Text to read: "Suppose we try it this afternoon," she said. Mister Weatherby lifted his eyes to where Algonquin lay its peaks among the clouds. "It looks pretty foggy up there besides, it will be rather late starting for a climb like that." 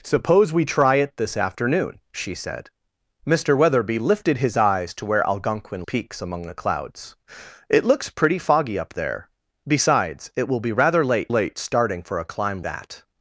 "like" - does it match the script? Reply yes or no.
no